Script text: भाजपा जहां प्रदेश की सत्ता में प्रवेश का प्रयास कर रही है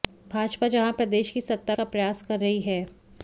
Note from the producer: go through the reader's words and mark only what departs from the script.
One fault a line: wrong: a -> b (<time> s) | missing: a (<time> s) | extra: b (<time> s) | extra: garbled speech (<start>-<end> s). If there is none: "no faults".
missing: में प्रवेश (1.8 s)